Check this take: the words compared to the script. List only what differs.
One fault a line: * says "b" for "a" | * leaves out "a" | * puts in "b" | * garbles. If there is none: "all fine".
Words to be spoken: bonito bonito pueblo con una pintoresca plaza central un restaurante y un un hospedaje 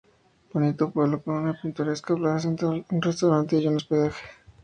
* leaves out "bonito"
* leaves out "un"